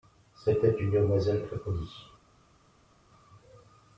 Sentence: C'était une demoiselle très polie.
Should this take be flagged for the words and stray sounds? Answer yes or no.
no